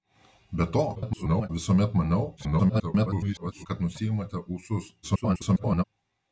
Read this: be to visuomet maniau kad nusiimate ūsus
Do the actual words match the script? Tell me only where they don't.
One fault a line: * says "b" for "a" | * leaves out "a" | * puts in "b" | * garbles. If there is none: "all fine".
* garbles
* garbles
* garbles